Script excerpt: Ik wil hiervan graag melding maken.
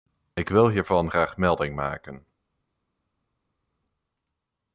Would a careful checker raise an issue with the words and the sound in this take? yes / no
no